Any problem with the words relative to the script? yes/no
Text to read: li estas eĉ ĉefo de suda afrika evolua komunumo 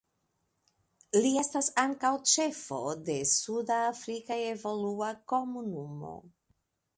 yes